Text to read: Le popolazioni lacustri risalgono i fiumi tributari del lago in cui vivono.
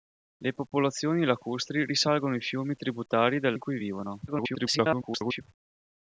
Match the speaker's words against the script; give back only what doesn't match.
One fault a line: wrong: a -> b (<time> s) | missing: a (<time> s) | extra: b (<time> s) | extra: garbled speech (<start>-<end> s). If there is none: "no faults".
missing: lago (3.5 s)
extra: garbled speech (4.3-5.4 s)